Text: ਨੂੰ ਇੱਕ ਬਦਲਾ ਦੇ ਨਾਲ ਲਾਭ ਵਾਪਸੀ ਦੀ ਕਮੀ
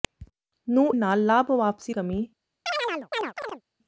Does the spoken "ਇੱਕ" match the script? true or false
false